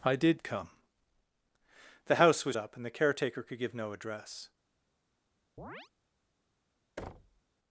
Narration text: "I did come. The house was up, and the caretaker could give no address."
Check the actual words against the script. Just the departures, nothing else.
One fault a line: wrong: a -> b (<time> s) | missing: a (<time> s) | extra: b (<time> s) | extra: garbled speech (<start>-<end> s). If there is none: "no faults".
no faults